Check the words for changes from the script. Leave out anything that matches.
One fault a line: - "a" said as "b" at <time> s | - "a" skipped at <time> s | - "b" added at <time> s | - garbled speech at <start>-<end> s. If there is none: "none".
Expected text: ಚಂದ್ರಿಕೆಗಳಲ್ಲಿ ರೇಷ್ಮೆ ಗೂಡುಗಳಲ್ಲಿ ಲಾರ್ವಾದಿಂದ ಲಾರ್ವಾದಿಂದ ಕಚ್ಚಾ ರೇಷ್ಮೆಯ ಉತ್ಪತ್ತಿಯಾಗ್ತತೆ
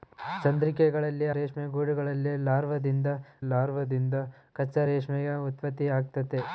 none